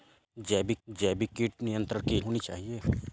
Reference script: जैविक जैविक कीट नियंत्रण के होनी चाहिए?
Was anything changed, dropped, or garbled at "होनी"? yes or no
no